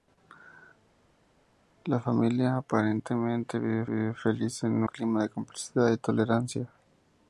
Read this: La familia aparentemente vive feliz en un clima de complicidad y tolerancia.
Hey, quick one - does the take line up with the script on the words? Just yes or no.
no